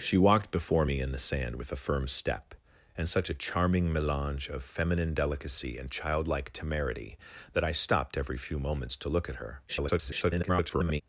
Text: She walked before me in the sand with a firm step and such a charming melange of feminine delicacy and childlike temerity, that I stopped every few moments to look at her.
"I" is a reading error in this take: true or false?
false